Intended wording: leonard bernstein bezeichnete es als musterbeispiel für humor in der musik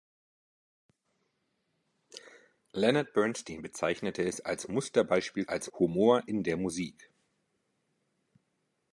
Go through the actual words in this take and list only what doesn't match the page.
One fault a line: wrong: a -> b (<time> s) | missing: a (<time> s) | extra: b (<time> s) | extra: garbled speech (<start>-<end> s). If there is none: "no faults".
wrong: für -> als (5.4 s)